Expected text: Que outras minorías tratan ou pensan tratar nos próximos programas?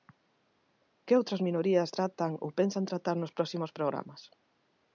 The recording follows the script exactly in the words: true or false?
true